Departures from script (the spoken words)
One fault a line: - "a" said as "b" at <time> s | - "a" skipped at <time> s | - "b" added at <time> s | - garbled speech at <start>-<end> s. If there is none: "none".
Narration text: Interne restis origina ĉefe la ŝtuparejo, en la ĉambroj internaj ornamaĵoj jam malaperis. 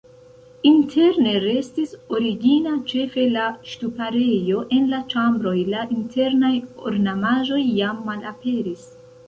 - "la" added at 5.8 s